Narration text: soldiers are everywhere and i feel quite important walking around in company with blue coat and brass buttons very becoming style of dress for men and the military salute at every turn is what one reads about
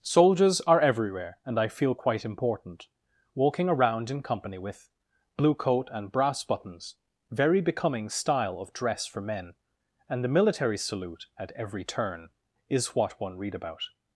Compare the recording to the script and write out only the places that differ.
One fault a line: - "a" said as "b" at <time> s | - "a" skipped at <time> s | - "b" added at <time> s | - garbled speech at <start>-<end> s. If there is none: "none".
- "reads" said as "read" at 13.4 s